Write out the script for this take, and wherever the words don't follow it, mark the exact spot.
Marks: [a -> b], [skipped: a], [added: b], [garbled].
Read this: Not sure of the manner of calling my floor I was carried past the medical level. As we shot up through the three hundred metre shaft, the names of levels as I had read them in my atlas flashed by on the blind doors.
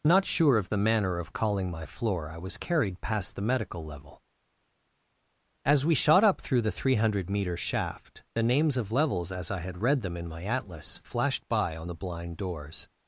Not sure of the manner of calling my floor I was carried past the medical level. As we shot up through the three hundred metre shaft, the names of levels as I had read them in my atlas flashed by on the blind doors.